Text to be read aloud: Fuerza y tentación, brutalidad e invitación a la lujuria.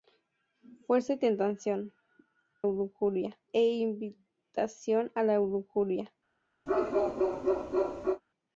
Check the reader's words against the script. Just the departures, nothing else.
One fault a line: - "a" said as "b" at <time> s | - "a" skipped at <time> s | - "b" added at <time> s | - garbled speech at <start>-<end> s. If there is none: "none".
- "brutalidad" said as "lujuria" at 2.6 s